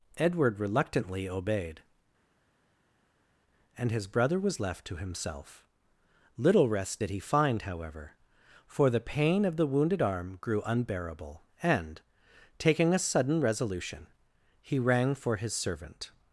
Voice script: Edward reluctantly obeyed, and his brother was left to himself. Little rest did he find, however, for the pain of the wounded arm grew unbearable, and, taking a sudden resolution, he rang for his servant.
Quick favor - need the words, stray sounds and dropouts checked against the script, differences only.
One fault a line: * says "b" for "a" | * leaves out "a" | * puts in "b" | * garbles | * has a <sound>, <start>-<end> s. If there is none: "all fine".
all fine